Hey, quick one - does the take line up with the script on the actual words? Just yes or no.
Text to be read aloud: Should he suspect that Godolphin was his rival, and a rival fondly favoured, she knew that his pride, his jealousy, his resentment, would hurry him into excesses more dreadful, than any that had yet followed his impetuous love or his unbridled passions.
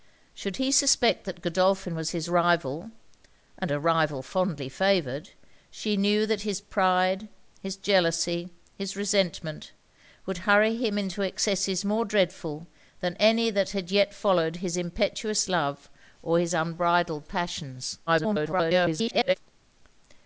no